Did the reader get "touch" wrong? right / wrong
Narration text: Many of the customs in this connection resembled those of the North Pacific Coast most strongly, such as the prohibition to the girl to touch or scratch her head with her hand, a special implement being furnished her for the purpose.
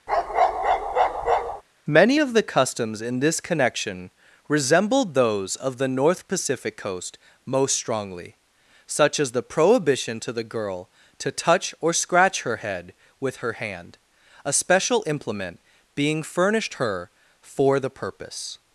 right